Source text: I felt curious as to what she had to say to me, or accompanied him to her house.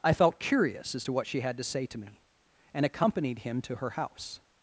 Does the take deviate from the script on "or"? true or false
true